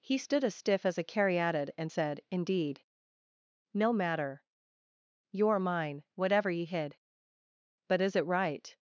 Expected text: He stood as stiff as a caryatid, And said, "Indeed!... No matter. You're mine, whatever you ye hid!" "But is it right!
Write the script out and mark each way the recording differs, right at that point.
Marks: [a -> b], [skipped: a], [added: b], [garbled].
He stood as stiff as a caryatid, And said, "Indeed!... No matter. You're mine, whatever [skipped: you] ye hid!" "But is it right!